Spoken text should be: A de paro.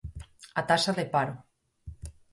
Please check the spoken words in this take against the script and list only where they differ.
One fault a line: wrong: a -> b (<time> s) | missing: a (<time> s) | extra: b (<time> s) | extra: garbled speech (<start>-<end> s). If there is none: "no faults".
extra: taxa (0.7 s)